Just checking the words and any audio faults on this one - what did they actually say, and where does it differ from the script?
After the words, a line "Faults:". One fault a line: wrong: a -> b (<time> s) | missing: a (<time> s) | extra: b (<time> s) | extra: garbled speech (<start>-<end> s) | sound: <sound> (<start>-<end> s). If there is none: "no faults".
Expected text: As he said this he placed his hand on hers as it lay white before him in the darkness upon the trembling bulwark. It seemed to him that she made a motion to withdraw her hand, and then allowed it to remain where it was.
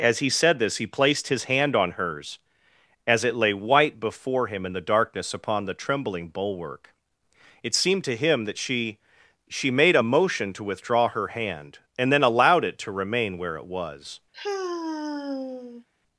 As he said this he placed his hand on hers as it lay white before him in the darkness upon the trembling bulwark. It seemed to him that she she made a motion to withdraw her hand, and then allowed it to remain where it was.
Faults:
extra: she (9.5 s)
sound: sigh (14.3-15.8 s)